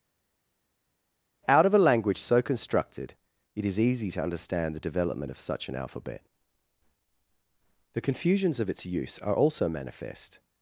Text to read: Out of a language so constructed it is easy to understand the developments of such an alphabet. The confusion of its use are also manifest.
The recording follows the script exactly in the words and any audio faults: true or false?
false